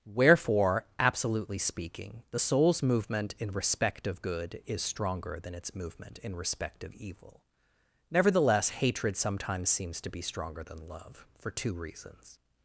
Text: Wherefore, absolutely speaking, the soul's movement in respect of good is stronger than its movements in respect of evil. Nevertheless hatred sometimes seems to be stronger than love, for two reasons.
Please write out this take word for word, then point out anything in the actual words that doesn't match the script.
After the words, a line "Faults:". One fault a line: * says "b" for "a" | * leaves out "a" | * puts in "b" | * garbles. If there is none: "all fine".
Wherefore, absolutely speaking, the soul's movement in respect of good is stronger than its movement in respect of evil. Nevertheless hatred sometimes seems to be stronger than love, for two reasons.
Faults:
* says "movement" for "movements"